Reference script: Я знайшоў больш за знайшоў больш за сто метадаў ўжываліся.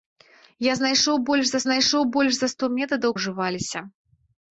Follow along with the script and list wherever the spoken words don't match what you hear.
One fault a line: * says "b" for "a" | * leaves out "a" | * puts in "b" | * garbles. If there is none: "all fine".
all fine